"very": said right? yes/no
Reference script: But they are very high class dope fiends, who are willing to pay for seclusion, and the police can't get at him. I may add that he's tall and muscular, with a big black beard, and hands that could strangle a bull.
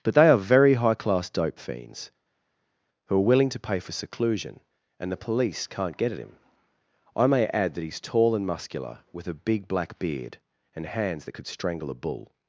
yes